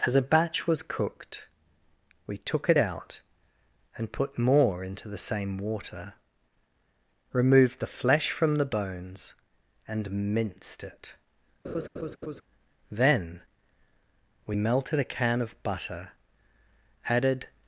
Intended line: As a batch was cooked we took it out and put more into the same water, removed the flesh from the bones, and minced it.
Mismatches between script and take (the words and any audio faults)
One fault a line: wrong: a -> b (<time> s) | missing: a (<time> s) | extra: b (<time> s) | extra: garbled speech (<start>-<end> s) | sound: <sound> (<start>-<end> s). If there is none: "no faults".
sound: laugh (11.6-12.4 s)
extra: Then we melted a can of butter added (12.9 s)